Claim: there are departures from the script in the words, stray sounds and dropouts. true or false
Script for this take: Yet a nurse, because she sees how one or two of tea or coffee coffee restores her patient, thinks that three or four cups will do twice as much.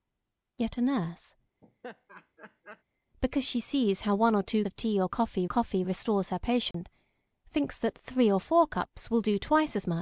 true